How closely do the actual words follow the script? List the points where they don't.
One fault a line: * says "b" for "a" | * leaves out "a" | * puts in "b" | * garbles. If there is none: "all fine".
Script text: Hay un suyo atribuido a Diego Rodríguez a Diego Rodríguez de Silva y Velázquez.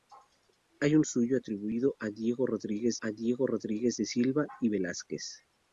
all fine